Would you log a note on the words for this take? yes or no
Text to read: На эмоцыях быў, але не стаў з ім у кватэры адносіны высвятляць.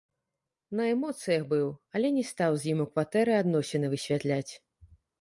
no